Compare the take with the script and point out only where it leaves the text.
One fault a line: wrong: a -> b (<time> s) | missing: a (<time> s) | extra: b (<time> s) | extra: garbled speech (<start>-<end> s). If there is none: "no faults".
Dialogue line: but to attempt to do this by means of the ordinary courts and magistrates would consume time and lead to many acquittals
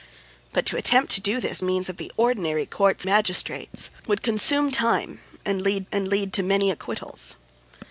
missing: by (1.6 s)
missing: and (3.1 s)
extra: and lead (5.9 s)